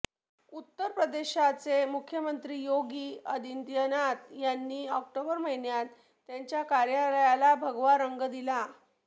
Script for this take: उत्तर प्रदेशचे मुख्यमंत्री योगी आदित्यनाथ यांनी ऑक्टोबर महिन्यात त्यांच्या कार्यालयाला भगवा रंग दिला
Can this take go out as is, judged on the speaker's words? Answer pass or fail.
pass